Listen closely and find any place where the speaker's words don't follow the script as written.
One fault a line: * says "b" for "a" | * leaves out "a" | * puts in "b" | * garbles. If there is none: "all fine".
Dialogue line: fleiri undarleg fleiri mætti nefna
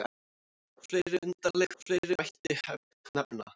all fine